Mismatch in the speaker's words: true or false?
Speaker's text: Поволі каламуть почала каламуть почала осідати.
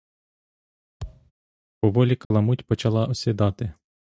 true